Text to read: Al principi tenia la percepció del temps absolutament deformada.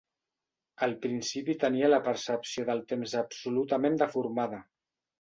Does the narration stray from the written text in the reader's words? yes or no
no